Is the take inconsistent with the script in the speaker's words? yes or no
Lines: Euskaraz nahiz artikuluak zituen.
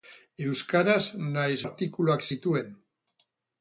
no